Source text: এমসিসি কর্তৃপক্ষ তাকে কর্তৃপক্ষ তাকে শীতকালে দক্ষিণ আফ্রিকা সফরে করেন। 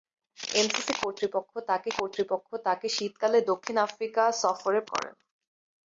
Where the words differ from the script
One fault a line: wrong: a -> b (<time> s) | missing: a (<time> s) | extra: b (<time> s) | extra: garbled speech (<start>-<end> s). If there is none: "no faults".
no faults